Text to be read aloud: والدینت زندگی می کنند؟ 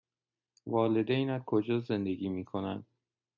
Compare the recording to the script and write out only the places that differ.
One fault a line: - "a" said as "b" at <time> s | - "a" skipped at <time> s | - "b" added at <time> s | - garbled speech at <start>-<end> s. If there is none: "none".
- "کجا" added at 1.4 s